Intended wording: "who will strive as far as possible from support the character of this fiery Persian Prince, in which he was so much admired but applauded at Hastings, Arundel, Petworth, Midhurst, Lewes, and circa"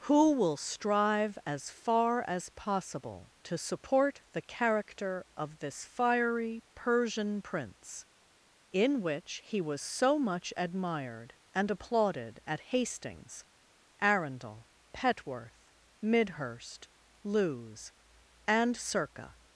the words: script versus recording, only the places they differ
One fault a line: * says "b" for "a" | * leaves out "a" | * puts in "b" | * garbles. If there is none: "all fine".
* says "to" for "from"
* says "and" for "but"